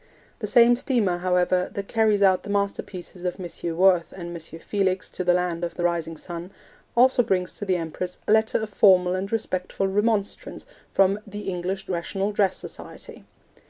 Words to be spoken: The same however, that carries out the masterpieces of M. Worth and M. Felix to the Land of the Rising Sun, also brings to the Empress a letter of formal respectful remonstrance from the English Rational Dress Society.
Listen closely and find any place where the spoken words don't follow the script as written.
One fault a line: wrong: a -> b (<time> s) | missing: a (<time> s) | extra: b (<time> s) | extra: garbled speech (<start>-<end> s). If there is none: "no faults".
extra: steamer (0.8 s)
extra: and (9.2 s)